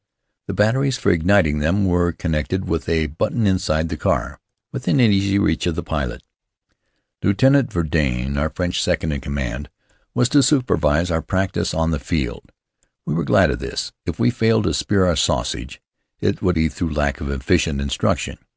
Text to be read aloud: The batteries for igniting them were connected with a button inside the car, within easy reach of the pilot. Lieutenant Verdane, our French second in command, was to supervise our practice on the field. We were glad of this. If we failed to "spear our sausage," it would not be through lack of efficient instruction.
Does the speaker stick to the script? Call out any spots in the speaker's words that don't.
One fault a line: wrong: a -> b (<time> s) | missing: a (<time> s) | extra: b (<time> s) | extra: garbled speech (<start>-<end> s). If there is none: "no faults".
missing: not (16.6 s)